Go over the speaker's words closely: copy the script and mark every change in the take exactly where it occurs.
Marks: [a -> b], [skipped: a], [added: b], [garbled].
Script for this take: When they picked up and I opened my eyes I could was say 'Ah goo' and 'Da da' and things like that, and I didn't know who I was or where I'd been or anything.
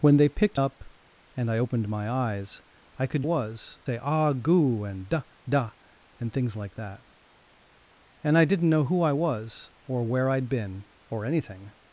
When they picked up and I opened my eyes I could was say 'Ah goo' and 'Da da' and things like that, and I didn't know who I was or where I'd been or anything.